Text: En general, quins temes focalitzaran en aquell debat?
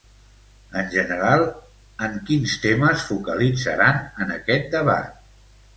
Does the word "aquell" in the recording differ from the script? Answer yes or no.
yes